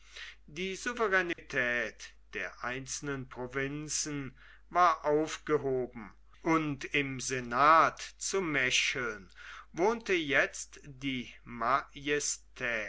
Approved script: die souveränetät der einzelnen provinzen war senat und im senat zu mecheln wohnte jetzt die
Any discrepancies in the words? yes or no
yes